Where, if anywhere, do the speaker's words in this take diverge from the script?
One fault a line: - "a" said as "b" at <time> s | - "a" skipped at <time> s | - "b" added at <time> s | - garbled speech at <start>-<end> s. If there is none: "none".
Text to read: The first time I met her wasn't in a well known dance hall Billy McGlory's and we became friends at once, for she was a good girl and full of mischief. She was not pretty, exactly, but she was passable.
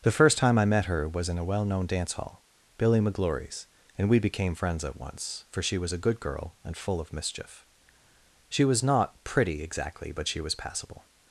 - "wasn't" said as "was" at 1.1 s